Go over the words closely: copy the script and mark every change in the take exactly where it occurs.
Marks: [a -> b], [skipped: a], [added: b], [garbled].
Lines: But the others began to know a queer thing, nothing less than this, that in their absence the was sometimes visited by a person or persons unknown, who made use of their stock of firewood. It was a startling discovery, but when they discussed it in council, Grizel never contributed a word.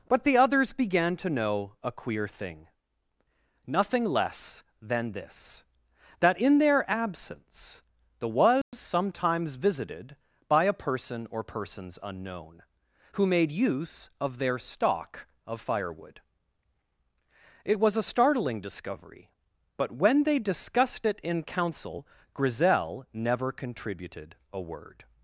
But the others began to know a queer thing, nothing less than this, that in their absence the was sometimes visited by a person or persons unknown, who made use of their stock of firewood. It was a startling discovery, but when they discussed it in council, Grizel never contributed a word.